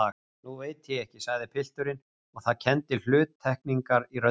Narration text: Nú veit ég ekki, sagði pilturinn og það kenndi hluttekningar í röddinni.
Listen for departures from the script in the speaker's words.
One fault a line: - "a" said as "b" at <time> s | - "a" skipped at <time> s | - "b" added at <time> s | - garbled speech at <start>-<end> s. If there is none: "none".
none